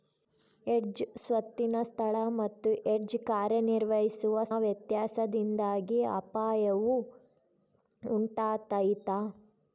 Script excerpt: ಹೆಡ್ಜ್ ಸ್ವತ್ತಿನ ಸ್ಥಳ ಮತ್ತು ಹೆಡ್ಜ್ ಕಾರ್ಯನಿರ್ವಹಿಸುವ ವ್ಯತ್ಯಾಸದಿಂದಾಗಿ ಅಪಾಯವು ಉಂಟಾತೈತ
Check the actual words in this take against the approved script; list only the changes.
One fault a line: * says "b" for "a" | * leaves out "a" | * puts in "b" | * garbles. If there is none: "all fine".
all fine